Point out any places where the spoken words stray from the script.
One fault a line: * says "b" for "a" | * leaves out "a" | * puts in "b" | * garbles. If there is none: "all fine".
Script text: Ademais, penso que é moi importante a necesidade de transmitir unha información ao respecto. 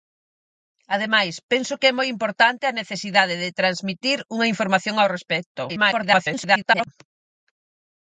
* garbles